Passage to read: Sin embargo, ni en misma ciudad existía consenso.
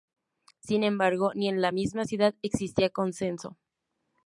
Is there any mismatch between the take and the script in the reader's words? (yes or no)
yes